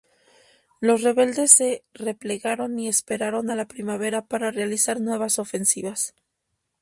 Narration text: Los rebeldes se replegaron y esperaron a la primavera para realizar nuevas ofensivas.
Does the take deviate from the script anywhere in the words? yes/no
no